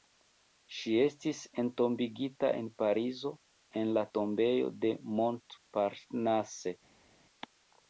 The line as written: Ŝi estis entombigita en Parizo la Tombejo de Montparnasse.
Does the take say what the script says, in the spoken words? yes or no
no